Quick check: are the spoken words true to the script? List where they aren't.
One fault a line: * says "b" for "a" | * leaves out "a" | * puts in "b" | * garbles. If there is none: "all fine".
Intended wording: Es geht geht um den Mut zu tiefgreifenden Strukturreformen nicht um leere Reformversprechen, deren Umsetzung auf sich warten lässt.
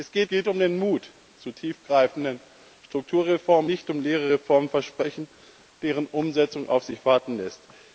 all fine